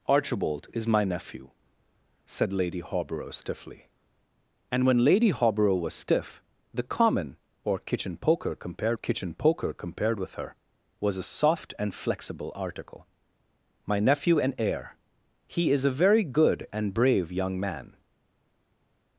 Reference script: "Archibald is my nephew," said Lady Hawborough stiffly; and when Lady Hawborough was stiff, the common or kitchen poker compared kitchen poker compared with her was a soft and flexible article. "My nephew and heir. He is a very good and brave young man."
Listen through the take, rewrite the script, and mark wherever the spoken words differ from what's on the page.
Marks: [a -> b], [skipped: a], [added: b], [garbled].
"Archibald is my nephew," said Lady Hawborough stiffly; and when Lady Hawborough was stiff, the common or kitchen poker compared kitchen poker compared with her was a soft and flexible article. "My nephew and heir. He is a very good and brave young man."